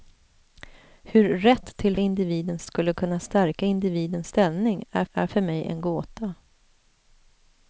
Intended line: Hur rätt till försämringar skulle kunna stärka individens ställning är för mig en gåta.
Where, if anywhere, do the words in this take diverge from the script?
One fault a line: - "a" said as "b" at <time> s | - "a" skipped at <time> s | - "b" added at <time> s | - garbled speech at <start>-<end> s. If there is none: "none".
- "försämringar" said as "individens" at 2.0 s
- "är" added at 5.1 s